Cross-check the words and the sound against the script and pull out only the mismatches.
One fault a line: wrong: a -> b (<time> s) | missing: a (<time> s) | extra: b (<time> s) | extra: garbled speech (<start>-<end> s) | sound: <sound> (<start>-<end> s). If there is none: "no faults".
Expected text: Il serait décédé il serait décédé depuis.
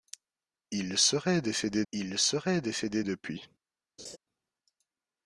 sound: laugh (4.0-4.2 s)